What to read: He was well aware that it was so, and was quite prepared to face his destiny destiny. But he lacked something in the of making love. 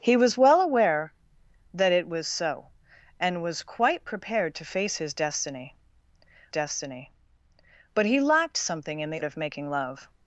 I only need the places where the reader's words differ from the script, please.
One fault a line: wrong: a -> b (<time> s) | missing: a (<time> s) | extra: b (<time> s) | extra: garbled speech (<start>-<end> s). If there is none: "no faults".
no faults